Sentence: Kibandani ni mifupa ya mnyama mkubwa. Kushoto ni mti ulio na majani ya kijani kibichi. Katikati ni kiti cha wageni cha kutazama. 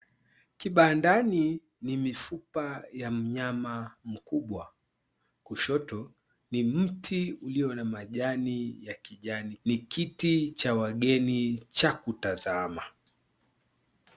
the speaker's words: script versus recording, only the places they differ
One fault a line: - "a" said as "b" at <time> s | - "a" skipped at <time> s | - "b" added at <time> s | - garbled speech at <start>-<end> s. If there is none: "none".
- "kibichi Katikati" skipped at 9.6 s